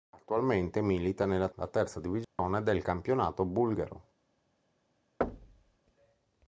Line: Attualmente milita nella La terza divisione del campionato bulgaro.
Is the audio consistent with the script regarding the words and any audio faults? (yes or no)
no